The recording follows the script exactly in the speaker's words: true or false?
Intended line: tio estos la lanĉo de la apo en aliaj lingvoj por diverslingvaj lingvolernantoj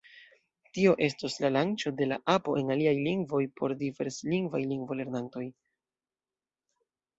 true